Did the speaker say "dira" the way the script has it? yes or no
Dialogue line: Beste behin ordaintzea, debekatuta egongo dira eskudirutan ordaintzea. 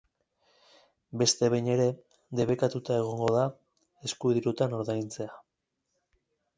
no